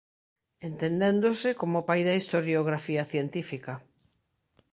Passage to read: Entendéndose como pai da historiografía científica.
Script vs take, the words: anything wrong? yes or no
no